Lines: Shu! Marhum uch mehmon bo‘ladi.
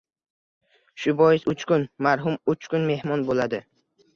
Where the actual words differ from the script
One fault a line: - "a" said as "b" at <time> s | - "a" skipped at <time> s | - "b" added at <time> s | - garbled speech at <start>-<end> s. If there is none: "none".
- "bois uch kun" added at 1.2 s
- "kun" added at 2.7 s